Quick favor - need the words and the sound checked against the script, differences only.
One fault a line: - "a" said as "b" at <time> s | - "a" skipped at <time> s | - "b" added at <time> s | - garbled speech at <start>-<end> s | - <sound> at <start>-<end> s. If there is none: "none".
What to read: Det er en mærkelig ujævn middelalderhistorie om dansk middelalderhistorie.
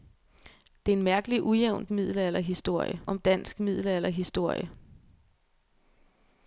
none